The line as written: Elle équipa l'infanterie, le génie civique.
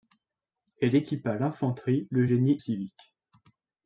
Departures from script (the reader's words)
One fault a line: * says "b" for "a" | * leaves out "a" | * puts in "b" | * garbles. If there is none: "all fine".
all fine